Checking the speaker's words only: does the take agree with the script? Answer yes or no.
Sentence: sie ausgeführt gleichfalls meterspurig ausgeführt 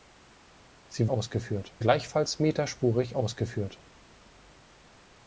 yes